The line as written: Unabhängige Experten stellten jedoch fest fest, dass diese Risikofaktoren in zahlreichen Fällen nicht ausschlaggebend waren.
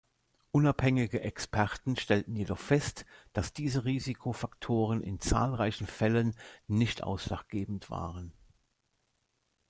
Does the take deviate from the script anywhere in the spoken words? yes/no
yes